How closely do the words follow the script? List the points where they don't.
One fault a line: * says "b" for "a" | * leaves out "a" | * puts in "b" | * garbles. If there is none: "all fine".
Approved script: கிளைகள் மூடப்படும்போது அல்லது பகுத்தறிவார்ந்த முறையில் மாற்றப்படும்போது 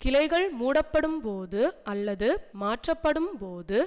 * leaves out "பகுத்தறிவார்ந்த முறையில்"